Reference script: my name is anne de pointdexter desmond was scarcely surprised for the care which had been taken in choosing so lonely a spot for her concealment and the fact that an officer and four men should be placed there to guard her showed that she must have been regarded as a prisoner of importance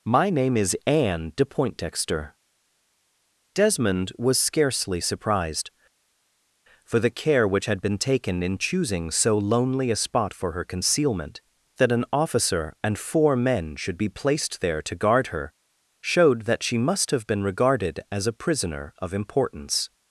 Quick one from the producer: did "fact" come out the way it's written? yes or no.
no